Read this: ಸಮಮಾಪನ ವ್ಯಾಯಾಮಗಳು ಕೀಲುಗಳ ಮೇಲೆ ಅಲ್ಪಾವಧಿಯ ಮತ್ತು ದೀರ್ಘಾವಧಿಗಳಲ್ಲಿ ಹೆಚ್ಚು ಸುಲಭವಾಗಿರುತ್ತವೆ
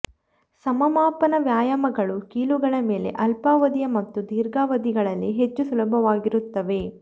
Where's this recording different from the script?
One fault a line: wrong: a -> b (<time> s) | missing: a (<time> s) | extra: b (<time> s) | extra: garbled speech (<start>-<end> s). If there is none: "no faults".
no faults